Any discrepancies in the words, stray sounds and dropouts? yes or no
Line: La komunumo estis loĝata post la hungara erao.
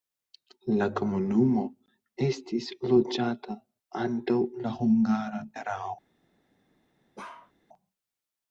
yes